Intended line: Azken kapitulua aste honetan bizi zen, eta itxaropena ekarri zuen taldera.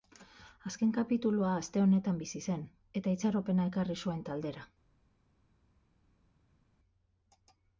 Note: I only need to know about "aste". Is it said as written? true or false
true